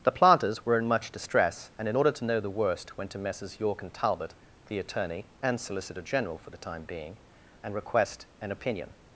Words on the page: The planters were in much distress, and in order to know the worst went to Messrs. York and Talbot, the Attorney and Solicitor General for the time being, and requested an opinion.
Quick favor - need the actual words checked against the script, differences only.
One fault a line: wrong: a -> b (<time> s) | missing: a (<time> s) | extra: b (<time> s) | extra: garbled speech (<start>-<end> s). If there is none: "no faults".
wrong: requested -> request (7.8 s)